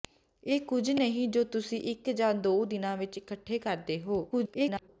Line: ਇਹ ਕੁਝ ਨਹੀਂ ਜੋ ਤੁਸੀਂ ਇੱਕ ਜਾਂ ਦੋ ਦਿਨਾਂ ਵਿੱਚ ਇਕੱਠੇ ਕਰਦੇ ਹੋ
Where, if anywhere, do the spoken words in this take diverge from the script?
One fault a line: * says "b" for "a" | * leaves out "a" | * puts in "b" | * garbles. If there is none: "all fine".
* garbles